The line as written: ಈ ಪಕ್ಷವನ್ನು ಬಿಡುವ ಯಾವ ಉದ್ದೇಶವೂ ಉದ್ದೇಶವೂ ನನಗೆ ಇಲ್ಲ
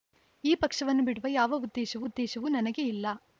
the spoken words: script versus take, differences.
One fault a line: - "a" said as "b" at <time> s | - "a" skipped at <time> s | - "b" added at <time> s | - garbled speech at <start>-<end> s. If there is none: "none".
none